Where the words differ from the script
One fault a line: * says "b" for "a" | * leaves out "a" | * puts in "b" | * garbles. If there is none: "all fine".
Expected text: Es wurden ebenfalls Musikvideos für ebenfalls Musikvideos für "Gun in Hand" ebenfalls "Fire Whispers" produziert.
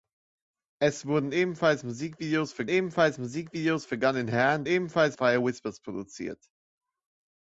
all fine